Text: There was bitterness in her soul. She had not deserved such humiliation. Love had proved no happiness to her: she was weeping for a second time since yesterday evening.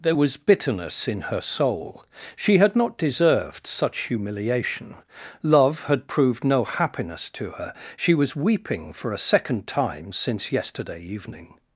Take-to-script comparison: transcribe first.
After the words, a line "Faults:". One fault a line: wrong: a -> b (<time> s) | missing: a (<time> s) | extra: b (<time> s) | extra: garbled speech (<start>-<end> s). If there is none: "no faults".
There was bitterness in her soul. She had not deserved such humiliation. Love had proved no happiness to her: she was weeping for a second time since yesterday evening.
Faults:
no faults